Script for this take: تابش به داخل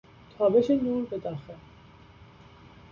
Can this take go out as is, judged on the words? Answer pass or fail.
fail